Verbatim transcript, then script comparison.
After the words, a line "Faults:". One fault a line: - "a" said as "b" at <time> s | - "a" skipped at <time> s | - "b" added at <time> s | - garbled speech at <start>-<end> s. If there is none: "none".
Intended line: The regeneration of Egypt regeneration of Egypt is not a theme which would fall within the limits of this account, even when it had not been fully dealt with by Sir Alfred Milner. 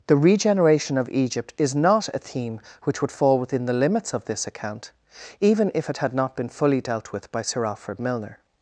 The regeneration of Egypt is not a theme which would fall within the limits of this account, even if it had not been fully dealt with by Sir Alfred Milner.
Faults:
- "regeneration of Egypt" skipped at 1.5 s
- "when" said as "if" at 5.7 s